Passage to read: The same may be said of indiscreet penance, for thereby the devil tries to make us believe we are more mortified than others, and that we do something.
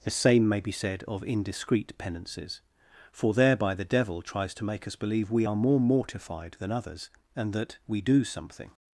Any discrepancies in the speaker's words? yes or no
yes